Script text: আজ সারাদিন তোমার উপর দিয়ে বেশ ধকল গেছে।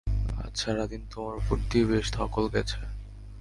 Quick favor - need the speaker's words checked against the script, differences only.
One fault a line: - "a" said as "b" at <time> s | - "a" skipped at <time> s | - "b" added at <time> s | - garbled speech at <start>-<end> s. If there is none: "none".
none